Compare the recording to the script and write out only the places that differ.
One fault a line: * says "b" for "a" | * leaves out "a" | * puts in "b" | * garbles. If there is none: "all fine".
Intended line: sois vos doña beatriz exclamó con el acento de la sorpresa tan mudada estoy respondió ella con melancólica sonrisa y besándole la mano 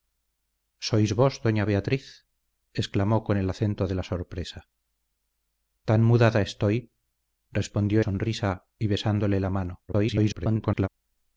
* leaves out "ella con melancólica"
* garbles